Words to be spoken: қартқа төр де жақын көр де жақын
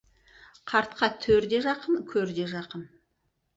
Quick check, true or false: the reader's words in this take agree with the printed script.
true